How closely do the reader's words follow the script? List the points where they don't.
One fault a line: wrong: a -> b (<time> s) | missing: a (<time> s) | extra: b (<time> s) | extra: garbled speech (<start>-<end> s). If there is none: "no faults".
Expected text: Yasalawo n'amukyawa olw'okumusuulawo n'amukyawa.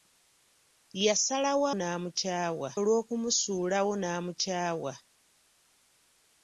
no faults